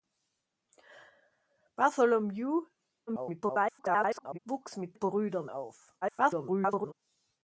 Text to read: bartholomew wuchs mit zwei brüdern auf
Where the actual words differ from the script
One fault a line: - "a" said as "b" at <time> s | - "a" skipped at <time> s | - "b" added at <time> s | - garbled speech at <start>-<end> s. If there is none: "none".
- garbled speech at 3.1-4.4 s
- "zwei" skipped at 5.0 s
- garbled speech at 6.0-6.9 s